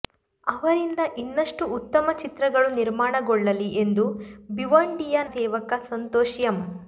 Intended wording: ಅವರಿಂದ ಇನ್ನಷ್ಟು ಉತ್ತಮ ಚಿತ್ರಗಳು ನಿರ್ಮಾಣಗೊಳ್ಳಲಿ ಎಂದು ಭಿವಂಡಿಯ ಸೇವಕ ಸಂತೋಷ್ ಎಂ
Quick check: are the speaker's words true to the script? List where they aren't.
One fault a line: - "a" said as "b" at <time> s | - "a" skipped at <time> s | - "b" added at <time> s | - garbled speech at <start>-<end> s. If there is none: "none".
none